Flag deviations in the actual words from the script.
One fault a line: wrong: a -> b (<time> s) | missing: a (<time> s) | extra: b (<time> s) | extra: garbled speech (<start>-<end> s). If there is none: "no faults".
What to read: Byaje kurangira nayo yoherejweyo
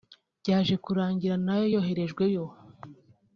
no faults